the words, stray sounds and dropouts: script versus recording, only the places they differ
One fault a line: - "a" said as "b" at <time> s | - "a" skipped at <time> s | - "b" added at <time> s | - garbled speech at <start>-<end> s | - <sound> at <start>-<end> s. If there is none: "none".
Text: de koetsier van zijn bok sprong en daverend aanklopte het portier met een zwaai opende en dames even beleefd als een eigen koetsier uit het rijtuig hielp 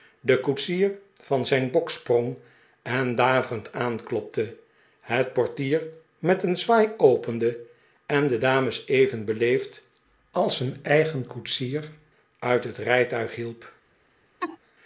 - "de" added at 8.3 s
- laugh at 14.4-14.6 s